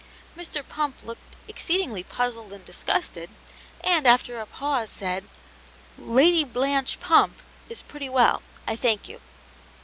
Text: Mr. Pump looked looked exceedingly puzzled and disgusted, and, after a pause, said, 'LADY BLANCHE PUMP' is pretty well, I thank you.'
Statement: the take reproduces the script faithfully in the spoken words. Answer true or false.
false